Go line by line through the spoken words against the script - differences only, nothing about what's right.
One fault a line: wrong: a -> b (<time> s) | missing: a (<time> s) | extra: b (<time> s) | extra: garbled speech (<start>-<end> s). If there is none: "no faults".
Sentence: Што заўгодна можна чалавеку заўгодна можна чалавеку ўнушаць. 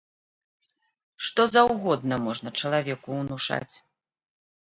missing: заўгодна можна чалавеку (3.1 s)